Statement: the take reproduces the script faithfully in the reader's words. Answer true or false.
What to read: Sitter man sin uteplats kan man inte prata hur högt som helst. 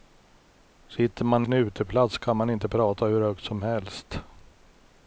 true